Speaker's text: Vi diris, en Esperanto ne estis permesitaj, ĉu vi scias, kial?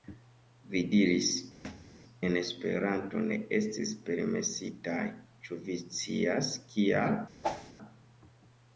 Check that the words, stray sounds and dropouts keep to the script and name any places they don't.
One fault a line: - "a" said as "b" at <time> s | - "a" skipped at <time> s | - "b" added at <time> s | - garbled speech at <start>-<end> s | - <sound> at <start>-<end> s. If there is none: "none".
- thud at 1.6-2.0 s
- whoosh at 7.4-7.7 s